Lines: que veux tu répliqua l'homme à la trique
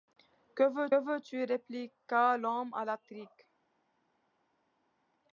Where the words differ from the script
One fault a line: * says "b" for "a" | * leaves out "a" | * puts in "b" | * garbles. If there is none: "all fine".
* puts in "veux"